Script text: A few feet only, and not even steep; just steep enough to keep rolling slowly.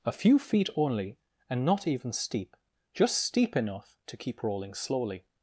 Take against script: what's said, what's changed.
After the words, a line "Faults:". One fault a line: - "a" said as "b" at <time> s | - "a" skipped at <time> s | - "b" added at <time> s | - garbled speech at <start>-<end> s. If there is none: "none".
A few feet only, and not even steep; just steep enough to keep rolling slowly.
Faults:
none